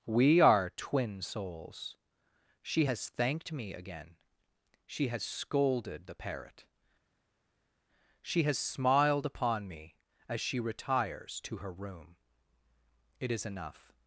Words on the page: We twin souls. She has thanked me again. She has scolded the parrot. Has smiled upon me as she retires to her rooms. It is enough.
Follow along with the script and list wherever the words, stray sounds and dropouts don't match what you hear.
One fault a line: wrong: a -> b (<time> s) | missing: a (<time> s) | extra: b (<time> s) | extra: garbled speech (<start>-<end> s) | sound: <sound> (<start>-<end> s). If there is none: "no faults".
extra: are (0.4 s)
extra: She (8.2 s)
wrong: rooms -> room (11.7 s)